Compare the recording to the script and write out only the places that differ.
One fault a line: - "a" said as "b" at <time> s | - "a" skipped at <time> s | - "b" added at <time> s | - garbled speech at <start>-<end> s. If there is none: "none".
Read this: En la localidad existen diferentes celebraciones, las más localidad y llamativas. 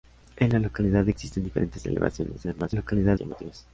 none